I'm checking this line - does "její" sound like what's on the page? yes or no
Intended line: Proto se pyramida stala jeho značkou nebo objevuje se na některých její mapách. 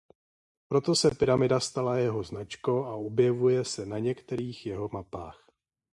no